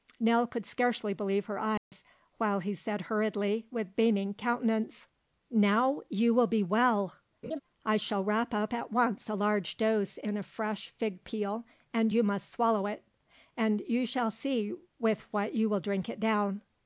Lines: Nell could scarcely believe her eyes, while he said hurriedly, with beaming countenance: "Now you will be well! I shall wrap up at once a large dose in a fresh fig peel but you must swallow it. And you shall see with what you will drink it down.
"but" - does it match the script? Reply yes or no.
no